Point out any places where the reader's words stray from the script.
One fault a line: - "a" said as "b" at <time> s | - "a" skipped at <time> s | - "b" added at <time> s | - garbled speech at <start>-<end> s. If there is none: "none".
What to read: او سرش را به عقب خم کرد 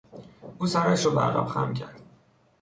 none